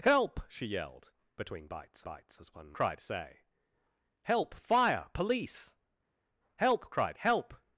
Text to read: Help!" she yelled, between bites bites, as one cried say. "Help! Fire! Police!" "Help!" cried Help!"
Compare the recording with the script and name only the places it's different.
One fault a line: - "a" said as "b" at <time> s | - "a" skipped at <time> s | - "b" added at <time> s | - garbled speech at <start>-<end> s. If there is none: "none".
none